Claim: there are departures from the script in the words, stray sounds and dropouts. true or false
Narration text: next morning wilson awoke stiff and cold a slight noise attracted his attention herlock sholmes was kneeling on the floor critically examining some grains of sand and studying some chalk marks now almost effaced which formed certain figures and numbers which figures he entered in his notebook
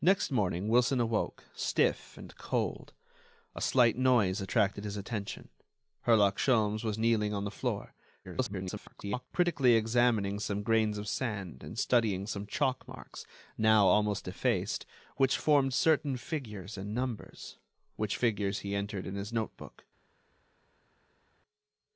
true